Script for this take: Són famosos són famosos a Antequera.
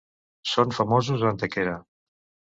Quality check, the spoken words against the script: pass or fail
fail